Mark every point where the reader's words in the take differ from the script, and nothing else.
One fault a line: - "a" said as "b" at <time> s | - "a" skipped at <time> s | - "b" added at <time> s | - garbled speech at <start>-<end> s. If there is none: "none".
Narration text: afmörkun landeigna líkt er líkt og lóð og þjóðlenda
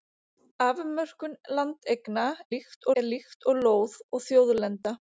none